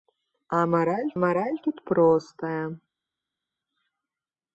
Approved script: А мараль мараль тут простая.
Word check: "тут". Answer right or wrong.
right